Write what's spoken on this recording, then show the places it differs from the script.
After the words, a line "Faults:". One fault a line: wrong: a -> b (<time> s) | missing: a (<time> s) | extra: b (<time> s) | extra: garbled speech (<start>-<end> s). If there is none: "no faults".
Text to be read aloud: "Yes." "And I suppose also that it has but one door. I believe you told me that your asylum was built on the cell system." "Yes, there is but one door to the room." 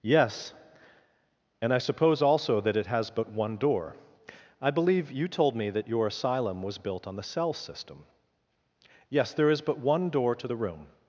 "Yes." "And I suppose also that it has but one door. I believe you told me that your asylum was built on the cell system." "Yes, there is but one door to the room."
Faults:
no faults